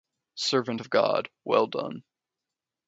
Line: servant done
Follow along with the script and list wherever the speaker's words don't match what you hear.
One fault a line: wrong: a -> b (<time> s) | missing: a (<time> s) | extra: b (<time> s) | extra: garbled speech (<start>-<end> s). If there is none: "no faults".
extra: of god well (0.8 s)